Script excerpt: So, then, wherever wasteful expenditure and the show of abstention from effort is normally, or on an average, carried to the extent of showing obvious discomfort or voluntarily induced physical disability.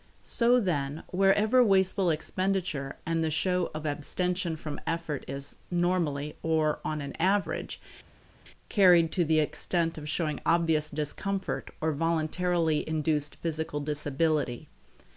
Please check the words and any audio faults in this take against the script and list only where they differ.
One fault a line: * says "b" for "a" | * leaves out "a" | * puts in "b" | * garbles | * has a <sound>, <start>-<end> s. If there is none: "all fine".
all fine